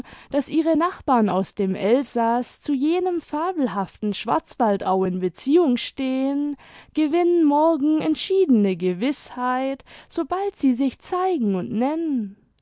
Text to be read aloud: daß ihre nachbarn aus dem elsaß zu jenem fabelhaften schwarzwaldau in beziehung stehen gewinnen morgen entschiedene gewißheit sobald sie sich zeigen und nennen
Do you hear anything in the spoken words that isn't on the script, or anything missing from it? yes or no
no